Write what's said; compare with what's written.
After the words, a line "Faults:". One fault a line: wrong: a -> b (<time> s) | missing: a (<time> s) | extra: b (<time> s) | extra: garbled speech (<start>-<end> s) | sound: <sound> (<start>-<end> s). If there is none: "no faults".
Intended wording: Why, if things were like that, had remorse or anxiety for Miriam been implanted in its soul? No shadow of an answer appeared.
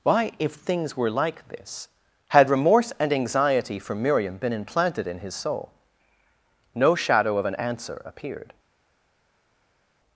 Why, if things were like this, had remorse and anxiety for Miriam been implanted in his soul? No shadow of an answer appeared.
Faults:
wrong: that -> this (1.5 s)
wrong: or -> and (3.0 s)
wrong: its -> his (5.2 s)